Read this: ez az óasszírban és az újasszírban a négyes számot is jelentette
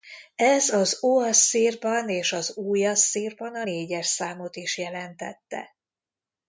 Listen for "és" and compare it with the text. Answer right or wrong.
right